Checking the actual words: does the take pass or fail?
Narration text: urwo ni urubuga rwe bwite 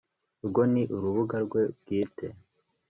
pass